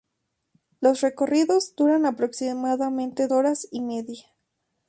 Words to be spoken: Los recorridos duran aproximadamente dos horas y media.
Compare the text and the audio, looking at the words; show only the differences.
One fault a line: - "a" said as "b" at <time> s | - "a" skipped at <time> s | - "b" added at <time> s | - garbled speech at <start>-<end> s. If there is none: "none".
- "dos" skipped at 3.3 s